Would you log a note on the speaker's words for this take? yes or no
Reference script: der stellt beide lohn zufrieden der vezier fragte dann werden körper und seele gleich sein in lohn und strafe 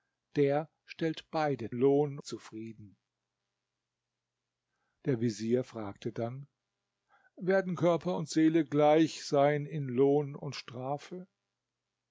no